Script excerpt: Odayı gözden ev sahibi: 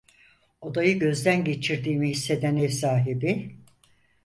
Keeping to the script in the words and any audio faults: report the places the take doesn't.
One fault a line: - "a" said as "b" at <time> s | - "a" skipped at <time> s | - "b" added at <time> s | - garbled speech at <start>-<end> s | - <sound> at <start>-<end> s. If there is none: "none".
- "geçirdiğimi hisseden" added at 1.4 s